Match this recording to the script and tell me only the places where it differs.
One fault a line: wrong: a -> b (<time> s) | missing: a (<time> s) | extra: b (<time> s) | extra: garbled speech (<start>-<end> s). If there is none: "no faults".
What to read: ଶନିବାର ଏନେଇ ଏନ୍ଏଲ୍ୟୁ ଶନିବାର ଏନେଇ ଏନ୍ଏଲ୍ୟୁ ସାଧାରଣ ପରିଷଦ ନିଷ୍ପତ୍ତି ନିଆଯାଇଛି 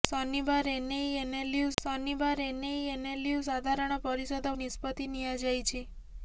no faults